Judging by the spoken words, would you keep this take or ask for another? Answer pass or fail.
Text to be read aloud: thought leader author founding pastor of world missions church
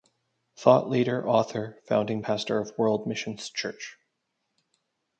pass